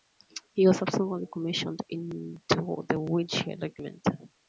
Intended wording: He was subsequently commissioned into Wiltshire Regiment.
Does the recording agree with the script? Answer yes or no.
no